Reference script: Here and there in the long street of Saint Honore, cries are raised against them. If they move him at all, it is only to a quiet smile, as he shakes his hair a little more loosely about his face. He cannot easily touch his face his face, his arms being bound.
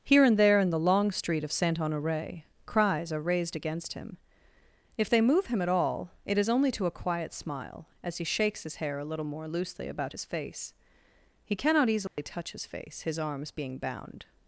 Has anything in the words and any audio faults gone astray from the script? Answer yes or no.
yes